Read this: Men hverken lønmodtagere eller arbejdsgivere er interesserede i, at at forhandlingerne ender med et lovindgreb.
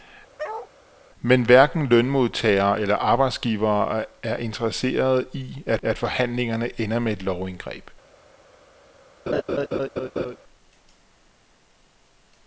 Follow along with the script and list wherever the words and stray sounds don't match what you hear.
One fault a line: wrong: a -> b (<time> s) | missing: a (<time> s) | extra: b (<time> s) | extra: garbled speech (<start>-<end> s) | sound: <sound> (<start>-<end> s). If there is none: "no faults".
sound: bark (0.4-0.7 s)
sound: laugh (9.3-10.4 s)